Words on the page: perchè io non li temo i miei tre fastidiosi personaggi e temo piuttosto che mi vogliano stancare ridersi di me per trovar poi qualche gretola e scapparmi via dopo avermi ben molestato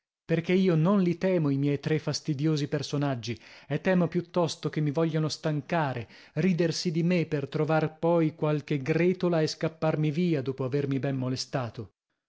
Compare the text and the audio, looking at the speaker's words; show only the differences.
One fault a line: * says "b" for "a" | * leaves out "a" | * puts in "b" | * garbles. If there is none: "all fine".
all fine